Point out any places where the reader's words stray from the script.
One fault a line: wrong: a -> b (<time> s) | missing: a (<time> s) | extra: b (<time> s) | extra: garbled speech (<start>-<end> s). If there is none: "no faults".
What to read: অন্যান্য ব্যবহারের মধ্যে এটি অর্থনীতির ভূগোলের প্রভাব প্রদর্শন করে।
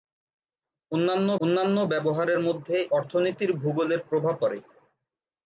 extra: অন্যান্য (1.4 s)
missing: এটি (2.8 s)
missing: প্রদর্শন (4.4 s)